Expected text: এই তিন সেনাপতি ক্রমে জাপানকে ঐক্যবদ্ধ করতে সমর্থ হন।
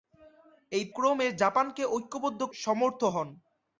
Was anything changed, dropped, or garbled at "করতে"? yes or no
yes